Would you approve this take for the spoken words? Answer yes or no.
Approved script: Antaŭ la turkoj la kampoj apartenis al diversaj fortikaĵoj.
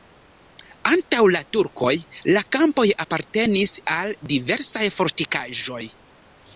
yes